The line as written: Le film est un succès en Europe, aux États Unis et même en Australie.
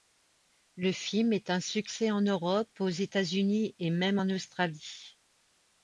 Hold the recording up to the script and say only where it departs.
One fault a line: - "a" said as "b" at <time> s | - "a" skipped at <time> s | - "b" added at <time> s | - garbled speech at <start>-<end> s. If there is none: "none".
none